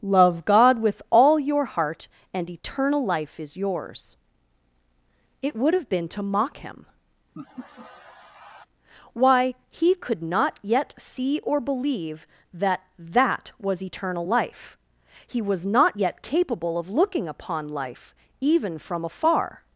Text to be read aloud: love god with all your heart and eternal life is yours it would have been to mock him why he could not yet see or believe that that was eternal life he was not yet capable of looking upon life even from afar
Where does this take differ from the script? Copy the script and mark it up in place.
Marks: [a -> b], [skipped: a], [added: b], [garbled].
love god with all your heart and eternal life is yours it would have been to mock him why he could not yet see or believe that that was eternal life he was not yet capable of looking upon life even from afar